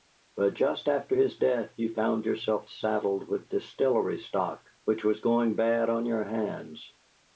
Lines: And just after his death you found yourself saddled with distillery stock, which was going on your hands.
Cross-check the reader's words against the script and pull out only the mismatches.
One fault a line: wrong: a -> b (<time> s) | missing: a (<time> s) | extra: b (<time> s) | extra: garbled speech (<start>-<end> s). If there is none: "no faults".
wrong: And -> But (0.3 s)
extra: bad (5.5 s)